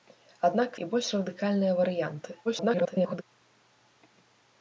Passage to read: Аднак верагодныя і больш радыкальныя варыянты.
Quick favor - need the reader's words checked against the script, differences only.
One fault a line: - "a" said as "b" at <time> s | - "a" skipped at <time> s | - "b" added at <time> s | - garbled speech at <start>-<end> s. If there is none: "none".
- "верагодныя" skipped at 0.8 s
- garbled speech at 2.4-3.2 s